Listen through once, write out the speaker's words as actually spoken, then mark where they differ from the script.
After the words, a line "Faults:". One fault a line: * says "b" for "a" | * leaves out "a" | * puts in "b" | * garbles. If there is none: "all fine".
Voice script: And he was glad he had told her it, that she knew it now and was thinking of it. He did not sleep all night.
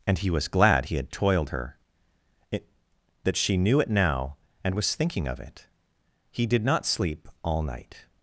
And he was glad he had toiled her it, that she knew it now and was thinking of it. He did not sleep all night.
Faults:
* says "toiled" for "told"